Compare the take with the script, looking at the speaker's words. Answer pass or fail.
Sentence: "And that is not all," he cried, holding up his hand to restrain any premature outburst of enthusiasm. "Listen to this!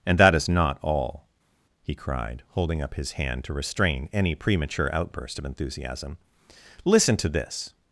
pass